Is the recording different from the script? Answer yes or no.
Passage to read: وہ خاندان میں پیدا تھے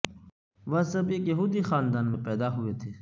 yes